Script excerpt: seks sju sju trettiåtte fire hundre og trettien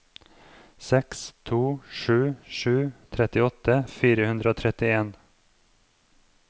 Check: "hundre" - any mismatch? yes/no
no